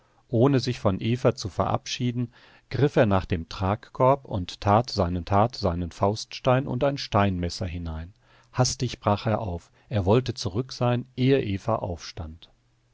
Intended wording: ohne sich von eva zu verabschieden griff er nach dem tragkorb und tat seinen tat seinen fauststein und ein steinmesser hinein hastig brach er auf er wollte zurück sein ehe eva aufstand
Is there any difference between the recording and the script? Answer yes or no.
no